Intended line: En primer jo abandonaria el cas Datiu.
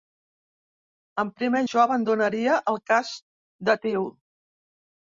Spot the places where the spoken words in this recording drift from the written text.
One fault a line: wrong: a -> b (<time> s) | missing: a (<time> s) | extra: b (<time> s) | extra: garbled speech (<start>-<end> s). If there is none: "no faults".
no faults